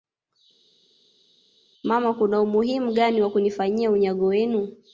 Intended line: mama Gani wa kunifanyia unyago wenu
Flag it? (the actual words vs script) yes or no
yes